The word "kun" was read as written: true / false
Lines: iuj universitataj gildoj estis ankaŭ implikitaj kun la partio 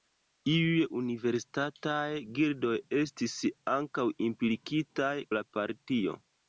false